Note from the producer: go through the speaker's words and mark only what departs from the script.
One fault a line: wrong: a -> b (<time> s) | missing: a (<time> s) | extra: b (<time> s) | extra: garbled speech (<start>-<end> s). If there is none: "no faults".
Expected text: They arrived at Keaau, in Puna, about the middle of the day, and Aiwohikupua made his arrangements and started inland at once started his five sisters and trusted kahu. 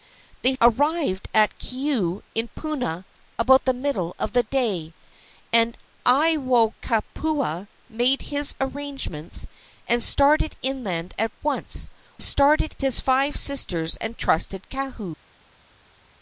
no faults